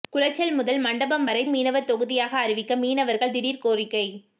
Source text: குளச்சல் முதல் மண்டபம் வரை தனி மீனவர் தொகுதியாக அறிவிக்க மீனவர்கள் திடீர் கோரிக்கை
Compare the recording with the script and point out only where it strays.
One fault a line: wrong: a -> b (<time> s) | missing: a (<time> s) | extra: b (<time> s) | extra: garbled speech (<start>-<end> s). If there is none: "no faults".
missing: தனி (1.4 s)